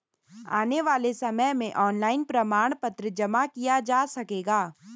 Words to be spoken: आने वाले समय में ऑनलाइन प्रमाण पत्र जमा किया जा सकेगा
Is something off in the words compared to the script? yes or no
no